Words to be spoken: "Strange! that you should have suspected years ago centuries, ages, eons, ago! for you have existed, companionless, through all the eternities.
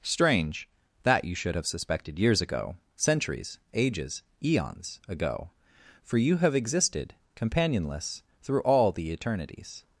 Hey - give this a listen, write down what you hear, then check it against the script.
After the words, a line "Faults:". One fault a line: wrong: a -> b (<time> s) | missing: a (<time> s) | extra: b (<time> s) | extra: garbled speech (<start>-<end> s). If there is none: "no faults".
"Strange! that you should have suspected years ago centuries, ages, eons, ago! for you have existed, companionless, through all the eternities.
Faults:
no faults